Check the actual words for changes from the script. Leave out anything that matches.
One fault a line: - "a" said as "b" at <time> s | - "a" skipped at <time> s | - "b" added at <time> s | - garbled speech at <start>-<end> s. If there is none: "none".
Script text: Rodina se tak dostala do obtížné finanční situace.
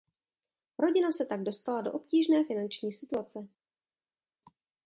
none